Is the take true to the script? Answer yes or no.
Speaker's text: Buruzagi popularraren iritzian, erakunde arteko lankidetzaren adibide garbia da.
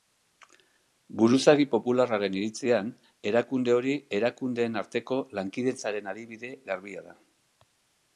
no